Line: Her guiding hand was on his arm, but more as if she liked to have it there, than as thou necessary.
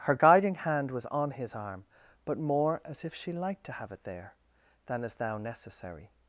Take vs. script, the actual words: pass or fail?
pass